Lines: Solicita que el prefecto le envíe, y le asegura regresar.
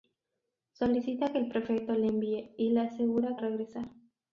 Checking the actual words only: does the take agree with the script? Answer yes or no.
yes